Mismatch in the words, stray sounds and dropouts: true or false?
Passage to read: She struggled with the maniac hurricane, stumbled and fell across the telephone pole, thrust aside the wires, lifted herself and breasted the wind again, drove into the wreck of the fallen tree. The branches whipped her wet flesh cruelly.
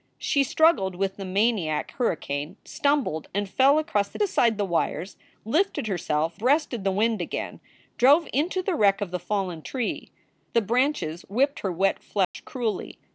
true